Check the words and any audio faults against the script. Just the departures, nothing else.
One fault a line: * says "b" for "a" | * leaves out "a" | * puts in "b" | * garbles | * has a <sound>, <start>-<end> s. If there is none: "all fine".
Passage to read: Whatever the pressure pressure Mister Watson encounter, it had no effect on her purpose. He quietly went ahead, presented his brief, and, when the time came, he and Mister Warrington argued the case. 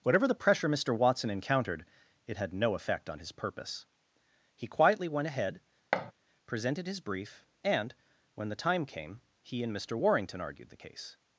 * leaves out "pressure"
* says "encountered" for "encounter"
* says "his" for "her"
* has a thud, 5.9-6.1 s